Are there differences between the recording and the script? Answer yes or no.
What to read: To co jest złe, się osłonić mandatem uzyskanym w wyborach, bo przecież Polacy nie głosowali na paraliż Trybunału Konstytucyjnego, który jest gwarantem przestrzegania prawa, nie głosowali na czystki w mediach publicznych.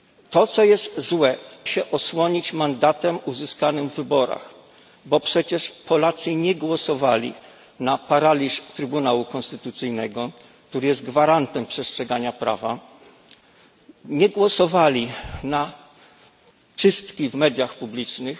no